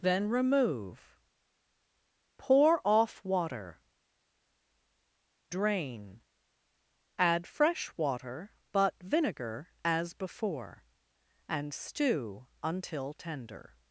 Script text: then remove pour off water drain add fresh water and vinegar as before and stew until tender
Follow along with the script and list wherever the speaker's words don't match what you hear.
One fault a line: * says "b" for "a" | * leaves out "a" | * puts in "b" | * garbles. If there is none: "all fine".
* says "but" for "and"